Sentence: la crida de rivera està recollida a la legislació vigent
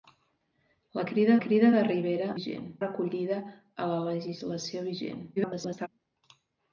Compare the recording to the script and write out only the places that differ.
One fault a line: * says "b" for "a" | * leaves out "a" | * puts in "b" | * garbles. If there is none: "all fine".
* puts in "crida"
* says "vigent" for "està"
* garbles